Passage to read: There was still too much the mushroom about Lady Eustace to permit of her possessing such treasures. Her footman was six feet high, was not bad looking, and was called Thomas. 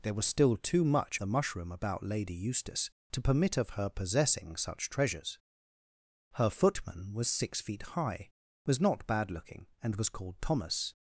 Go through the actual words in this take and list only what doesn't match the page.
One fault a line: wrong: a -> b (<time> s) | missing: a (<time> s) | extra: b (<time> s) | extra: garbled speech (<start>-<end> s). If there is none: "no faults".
no faults